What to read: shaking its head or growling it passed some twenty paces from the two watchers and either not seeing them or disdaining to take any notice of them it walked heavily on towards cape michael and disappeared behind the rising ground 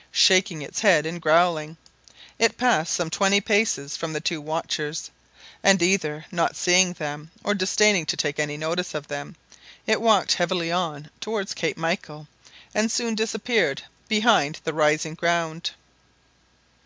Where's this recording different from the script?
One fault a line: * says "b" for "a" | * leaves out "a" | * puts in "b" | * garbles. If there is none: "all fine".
* says "and" for "or"
* puts in "soon"